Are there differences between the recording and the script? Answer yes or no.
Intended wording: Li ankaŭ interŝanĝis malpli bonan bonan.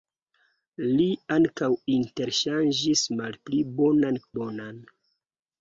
no